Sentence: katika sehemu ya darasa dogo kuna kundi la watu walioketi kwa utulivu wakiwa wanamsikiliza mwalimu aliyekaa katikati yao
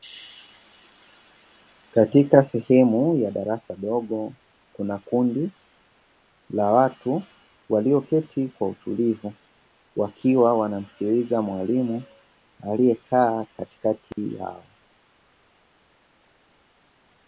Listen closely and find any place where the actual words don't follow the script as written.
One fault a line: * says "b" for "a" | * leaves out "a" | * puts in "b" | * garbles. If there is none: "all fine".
all fine